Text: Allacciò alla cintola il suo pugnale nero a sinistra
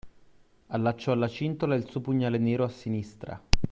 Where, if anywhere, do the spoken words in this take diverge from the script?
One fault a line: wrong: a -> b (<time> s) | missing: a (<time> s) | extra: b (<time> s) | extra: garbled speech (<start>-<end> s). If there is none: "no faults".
no faults